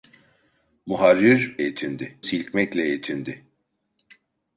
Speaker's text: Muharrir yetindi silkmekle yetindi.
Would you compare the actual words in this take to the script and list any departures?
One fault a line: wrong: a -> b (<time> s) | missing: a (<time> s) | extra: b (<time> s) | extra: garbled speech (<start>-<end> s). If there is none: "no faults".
no faults